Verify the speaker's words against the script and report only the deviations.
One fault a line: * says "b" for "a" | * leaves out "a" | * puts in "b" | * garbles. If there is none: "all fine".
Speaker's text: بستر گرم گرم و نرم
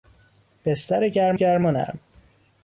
all fine